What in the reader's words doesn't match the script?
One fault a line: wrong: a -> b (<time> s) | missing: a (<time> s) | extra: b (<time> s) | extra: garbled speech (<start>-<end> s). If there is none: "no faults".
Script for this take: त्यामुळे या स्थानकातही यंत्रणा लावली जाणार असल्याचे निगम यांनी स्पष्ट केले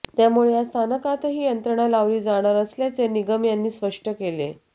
no faults